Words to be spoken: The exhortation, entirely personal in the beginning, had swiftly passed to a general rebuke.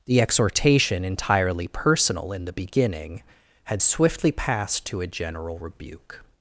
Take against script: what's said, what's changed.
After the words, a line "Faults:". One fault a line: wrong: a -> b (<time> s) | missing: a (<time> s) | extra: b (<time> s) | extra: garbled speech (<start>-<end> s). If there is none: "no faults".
The exhortation, entirely personal in the beginning, had swiftly passed to a general rebuke.
Faults:
no faults